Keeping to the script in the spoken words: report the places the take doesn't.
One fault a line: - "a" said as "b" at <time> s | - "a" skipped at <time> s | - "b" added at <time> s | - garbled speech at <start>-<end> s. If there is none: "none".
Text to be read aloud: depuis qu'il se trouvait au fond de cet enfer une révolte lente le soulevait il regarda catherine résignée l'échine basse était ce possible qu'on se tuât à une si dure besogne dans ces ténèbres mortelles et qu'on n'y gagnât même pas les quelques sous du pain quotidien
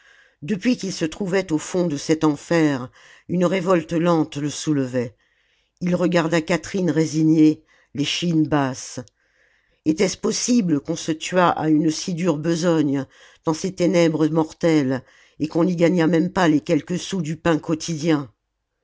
none